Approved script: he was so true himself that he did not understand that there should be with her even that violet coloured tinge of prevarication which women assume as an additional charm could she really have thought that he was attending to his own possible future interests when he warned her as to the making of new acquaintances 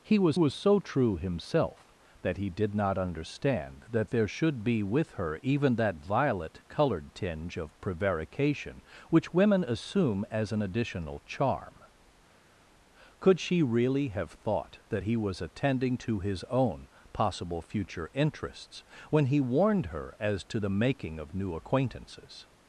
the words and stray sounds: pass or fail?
fail